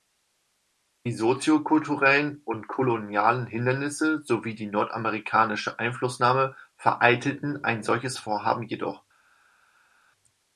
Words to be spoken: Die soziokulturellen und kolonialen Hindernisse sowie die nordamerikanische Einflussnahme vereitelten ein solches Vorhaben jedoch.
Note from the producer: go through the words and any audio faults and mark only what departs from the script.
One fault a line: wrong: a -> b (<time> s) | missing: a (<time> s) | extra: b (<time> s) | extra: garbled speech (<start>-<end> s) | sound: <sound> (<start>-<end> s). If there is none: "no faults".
no faults